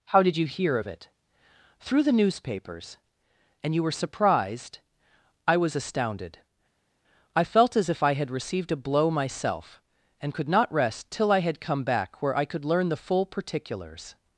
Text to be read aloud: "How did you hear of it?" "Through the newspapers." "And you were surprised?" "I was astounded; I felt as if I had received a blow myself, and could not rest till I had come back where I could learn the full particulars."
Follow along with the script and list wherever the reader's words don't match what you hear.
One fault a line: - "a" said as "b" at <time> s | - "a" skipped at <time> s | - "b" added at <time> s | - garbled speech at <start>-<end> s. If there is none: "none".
none